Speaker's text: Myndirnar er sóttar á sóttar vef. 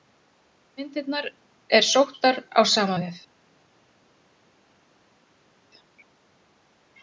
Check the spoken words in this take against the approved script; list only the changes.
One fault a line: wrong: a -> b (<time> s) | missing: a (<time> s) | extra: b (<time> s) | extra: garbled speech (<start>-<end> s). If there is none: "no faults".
wrong: sóttar -> sama (2.7 s)